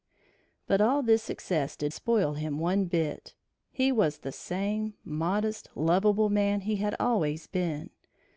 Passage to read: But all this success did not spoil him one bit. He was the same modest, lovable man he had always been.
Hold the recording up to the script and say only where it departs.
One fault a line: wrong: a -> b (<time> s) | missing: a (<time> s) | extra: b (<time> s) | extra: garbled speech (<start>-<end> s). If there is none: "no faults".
missing: not (1.9 s)